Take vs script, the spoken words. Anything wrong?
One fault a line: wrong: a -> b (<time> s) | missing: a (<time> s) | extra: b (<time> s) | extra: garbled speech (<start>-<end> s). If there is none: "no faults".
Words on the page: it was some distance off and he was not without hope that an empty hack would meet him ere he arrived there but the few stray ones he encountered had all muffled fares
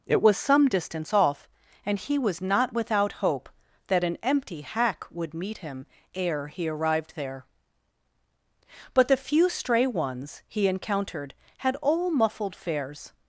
no faults